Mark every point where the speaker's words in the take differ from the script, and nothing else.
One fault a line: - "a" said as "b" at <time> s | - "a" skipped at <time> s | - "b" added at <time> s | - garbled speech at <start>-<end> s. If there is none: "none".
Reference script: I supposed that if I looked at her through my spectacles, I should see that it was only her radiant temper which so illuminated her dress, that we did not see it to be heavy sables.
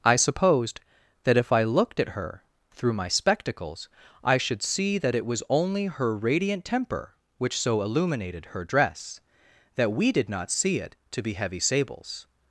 none